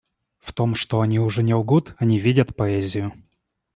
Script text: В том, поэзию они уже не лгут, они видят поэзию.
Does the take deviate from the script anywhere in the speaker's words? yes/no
yes